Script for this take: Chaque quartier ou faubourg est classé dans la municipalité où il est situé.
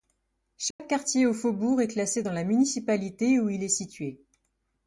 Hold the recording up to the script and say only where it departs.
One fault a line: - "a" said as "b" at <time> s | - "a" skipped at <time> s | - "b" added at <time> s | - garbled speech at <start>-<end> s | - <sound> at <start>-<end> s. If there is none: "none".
- dropout at 0.7-0.8 s